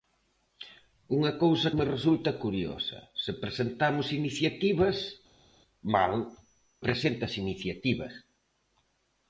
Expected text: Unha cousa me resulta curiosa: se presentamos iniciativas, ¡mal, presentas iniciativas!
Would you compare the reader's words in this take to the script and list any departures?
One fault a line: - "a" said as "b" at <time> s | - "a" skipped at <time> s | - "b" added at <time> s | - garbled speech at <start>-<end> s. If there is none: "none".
none